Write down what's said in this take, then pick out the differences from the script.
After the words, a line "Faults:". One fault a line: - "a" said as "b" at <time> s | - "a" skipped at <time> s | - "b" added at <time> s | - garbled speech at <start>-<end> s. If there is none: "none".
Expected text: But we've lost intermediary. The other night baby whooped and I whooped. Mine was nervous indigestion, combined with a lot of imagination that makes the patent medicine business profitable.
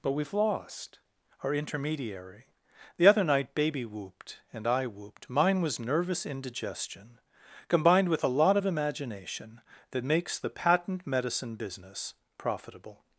But we've lost our intermediary. The other night baby whooped and I whooped. Mine was nervous indigestion, combined with a lot of imagination that makes the patent medicine business profitable.
Faults:
- "our" added at 1.4 s